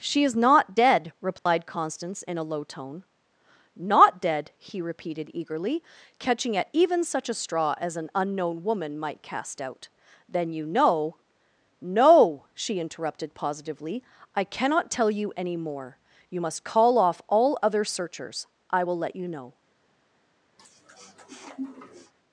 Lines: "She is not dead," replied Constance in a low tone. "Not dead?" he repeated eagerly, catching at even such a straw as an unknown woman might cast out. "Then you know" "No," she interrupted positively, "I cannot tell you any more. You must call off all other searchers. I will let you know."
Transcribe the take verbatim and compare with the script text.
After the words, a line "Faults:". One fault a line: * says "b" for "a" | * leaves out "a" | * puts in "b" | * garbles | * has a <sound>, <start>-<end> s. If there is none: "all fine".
"She is not dead," replied Constance in a low tone. "Not dead?" he repeated eagerly, catching at even such a straw as an unknown woman might cast out. "Then you know" "No," she interrupted positively, "I cannot tell you any more. You must call off all other searchers. I will let you know."
Faults:
* has a dropout, 1.4-1.5 s
* has a sniff, 20.6-22.1 s